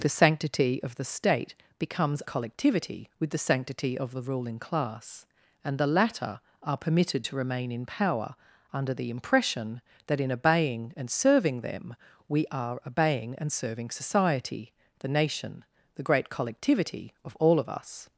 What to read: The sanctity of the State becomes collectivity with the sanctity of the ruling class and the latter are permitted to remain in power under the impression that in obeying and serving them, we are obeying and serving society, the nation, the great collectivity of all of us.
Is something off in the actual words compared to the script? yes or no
no